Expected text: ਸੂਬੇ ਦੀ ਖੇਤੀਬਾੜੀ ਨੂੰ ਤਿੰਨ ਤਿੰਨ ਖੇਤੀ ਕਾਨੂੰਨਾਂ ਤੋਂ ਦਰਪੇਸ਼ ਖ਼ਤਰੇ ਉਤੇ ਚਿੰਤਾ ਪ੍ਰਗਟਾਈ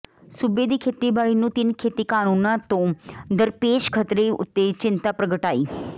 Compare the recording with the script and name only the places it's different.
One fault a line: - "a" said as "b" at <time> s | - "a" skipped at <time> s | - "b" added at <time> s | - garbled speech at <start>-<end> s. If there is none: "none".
- "ਤਿੰਨ" skipped at 1.7 s